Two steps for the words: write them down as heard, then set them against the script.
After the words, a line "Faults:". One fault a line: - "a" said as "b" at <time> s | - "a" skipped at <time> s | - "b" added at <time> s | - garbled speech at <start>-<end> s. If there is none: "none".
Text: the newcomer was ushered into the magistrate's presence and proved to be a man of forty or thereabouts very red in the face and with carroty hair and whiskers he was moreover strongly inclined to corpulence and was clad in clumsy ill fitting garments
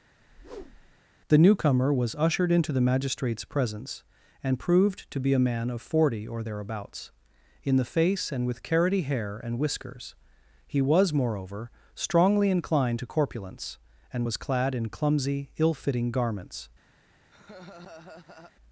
the newcomer was ushered into the magistrate's presence and proved to be a man of forty or thereabouts in the face and with carroty hair and whiskers he was moreover strongly inclined to corpulence and was clad in clumsy ill fitting garments
Faults:
- "very red" skipped at 7.1 s